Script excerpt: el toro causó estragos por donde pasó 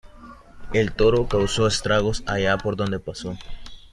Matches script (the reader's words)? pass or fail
fail